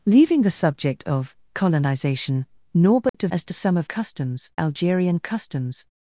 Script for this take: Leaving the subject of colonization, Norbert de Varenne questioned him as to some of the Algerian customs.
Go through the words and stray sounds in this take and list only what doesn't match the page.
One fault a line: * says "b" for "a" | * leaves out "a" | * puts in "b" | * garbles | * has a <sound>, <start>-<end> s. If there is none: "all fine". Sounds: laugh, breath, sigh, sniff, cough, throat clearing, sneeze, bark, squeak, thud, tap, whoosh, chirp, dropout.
* has a dropout, 3.1-3.1 s
* leaves out "Varenne questioned him"
* says "customs" for "the"